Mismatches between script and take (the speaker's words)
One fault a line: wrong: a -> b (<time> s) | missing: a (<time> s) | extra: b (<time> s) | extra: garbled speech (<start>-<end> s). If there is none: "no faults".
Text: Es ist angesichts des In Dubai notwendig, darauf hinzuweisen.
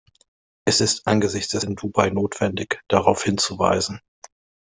no faults